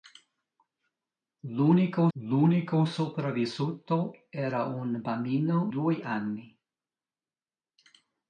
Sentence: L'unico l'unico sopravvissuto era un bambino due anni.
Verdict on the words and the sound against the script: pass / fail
pass